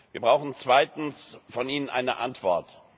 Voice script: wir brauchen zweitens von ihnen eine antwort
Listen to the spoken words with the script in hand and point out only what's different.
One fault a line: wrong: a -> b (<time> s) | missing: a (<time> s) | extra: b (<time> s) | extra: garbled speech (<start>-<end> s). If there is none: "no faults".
no faults